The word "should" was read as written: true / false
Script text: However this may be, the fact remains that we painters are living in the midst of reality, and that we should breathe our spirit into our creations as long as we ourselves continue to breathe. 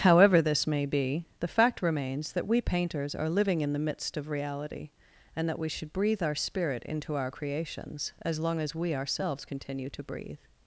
true